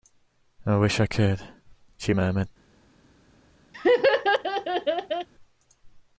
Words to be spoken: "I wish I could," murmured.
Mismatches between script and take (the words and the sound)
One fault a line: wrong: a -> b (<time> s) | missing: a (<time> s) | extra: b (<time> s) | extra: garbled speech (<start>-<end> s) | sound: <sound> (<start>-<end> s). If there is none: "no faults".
extra: she (2.0 s)
sound: laugh (3.7-5.3 s)